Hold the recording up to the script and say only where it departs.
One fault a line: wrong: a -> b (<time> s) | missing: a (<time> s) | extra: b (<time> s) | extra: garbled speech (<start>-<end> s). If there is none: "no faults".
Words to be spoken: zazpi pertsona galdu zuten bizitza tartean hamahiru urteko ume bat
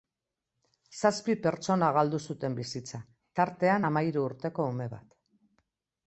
no faults